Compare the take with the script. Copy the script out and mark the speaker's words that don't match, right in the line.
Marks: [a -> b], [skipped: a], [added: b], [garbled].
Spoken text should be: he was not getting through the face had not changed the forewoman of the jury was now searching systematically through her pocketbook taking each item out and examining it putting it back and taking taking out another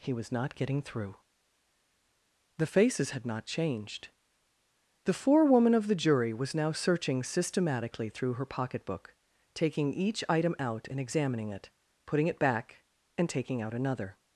he was not getting through the [face -> faces] had not changed the forewoman of the jury was now searching systematically through her pocketbook taking each item out and examining it putting it back and taking [skipped: taking] out another